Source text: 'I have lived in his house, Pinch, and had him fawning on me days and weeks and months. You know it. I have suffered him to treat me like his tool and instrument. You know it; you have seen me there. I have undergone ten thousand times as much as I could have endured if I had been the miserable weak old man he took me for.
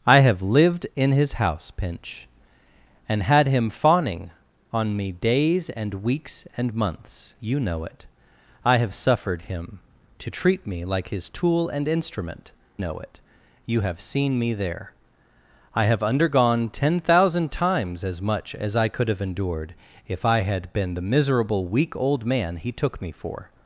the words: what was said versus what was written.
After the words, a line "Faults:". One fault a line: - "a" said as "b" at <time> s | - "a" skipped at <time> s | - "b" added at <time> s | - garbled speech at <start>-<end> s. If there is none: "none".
'I have lived in his house, Pinch, and had him fawning on me days and weeks and months. You know it. I have suffered him to treat me like his tool and instrument. Know it; you have seen me there. I have undergone ten thousand times as much as I could have endured if I had been the miserable weak old man he took me for.
Faults:
- "You" skipped at 12.5 s